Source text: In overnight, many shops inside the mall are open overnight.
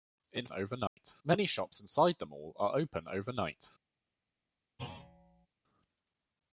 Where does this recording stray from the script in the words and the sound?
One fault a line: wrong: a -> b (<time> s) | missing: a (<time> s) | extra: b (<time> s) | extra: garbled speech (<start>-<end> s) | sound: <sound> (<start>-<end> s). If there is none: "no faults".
sound: dropout (0.9-1.0 s)
sound: thud (4.8-5.5 s)